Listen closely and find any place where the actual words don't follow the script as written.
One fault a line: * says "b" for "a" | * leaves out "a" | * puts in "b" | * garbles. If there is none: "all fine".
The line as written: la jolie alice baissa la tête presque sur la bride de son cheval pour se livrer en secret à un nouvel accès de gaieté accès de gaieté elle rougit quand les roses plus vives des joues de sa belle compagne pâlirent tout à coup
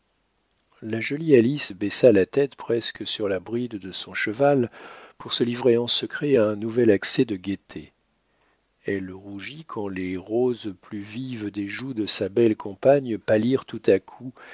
* leaves out "accès de gaieté"